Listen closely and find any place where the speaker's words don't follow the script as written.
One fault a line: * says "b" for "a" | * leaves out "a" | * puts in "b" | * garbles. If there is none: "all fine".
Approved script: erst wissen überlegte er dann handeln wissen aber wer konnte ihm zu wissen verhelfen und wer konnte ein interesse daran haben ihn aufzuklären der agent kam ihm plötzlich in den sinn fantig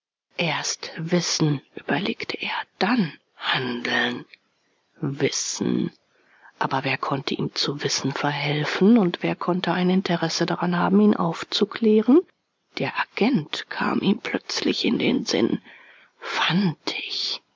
all fine